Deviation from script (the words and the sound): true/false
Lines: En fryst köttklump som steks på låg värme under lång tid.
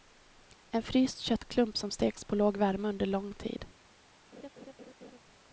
true